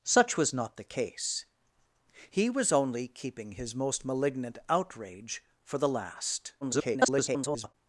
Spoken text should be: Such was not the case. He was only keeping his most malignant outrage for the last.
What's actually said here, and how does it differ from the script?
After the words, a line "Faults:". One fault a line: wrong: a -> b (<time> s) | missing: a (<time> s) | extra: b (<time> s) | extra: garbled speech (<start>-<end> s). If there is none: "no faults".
Such was not the case. He was only keeping his most malignant outrage for the last. [garbled]
Faults:
extra: garbled speech (6.6-7.7 s)